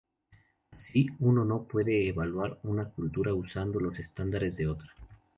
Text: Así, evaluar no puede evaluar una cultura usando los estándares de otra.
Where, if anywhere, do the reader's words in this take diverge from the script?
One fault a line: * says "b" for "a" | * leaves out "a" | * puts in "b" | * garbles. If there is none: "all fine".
* says "uno" for "evaluar"